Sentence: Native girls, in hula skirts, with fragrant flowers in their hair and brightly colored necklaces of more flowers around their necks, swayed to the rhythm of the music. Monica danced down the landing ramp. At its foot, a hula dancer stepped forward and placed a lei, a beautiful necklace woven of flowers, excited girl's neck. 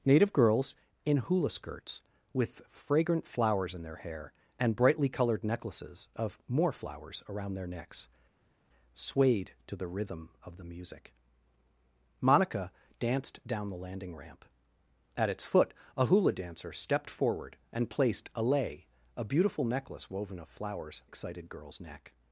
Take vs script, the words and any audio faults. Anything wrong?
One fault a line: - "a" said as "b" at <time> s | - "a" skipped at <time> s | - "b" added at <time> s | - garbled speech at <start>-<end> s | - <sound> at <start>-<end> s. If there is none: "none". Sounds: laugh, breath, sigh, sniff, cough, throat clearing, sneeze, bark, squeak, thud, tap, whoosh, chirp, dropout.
none